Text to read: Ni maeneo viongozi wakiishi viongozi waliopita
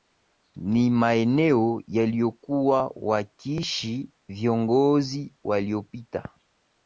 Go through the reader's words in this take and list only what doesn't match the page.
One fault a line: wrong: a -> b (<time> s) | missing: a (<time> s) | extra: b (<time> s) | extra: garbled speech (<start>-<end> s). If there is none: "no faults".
wrong: viongozi -> yaliyokuwa (1.9 s)